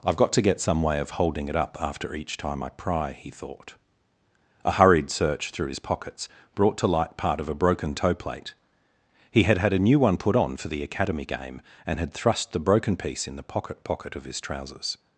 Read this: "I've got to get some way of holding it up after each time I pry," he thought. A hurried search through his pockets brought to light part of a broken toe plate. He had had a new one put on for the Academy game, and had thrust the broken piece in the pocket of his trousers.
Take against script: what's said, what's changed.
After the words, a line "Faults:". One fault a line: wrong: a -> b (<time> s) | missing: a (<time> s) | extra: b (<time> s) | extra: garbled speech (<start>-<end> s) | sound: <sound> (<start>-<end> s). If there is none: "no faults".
"I've got to get some way of holding it up after each time I pry," he thought. A hurried search through his pockets brought to light part of a broken toe plate. He had had a new one put on for the Academy game, and had thrust the broken piece in the pocket pocket of his trousers.
Faults:
extra: pocket (13.8 s)